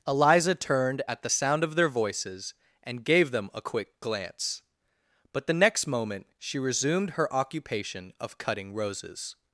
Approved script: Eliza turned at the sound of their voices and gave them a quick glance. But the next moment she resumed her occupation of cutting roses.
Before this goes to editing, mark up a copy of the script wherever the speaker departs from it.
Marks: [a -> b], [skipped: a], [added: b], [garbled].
Eliza turned at the sound of their voices and gave them a quick glance. But the next moment she resumed her occupation of cutting roses.